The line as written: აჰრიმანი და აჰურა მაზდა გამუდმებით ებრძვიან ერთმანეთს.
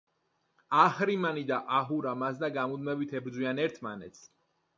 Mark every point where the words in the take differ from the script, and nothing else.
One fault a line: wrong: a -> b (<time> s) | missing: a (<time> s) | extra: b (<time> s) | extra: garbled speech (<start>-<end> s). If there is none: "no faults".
no faults